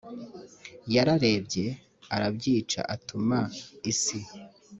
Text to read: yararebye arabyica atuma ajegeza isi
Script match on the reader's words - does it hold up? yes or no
no